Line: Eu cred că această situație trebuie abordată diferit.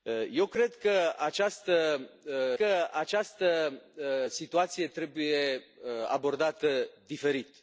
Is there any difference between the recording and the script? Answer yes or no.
yes